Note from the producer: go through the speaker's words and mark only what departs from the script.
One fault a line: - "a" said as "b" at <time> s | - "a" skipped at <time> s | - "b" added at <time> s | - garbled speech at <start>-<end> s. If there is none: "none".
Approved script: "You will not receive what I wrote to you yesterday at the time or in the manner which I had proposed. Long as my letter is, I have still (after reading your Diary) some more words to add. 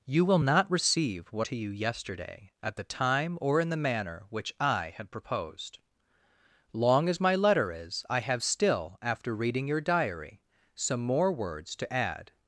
- "I wrote" skipped at 1.5 s